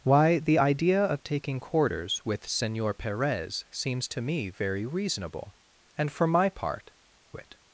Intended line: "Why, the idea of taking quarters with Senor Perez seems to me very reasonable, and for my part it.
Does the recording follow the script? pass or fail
pass